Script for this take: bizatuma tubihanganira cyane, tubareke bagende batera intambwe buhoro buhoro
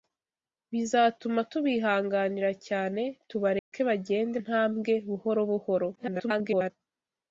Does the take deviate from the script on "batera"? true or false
true